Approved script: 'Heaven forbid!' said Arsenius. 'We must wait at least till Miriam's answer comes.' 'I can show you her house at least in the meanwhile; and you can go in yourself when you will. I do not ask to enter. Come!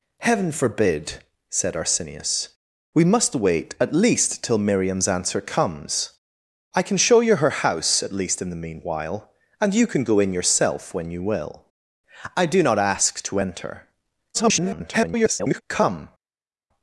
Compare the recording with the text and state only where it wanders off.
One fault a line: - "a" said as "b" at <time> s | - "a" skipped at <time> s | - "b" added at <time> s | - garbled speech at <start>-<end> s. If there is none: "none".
- garbled speech at 14.3-15.6 s